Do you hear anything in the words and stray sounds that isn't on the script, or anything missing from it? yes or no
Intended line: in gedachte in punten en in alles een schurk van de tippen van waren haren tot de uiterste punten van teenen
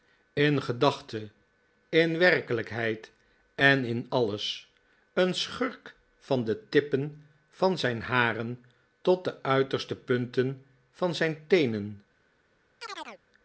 yes